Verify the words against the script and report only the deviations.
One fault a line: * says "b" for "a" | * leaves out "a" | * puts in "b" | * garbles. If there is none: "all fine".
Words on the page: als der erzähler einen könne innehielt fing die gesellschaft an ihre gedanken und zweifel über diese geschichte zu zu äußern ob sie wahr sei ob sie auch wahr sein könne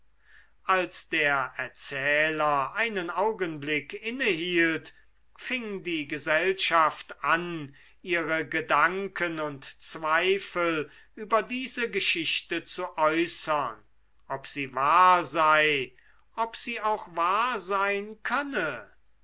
* says "augenblick" for "könne"
* leaves out "zu"